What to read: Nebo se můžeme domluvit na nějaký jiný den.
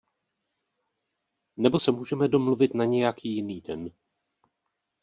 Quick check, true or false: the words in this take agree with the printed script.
true